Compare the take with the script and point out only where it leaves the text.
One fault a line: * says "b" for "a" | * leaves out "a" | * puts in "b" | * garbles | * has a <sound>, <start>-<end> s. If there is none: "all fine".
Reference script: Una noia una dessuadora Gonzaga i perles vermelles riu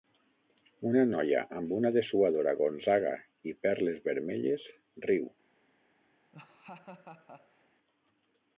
* puts in "amb"
* has a laugh, 6.3-7.7 s